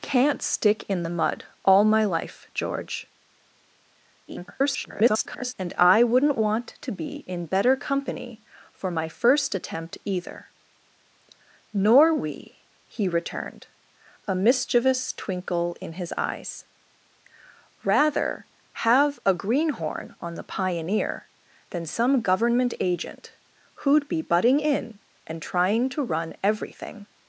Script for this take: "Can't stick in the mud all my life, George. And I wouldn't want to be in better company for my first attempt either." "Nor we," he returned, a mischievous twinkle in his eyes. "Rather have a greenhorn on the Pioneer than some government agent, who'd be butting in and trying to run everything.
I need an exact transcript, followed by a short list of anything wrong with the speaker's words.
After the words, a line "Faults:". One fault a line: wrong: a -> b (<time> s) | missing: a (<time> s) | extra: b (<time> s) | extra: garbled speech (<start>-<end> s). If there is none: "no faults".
"Can't stick in the mud all my life, George. [garbled] And I wouldn't want to be in better company for my first attempt either." "Nor we," he returned, a mischievous twinkle in his eyes. "Rather have a greenhorn on the Pioneer than some government agent, who'd be butting in and trying to run everything.
Faults:
extra: garbled speech (4.3-5.5 s)